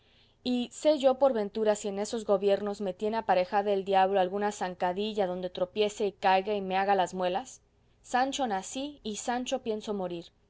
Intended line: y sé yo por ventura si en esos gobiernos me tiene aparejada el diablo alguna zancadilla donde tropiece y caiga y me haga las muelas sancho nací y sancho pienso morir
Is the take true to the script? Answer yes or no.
yes